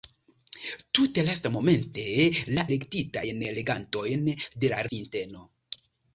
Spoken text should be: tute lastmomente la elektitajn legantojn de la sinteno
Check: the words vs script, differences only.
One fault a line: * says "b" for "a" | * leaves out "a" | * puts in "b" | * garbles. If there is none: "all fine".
all fine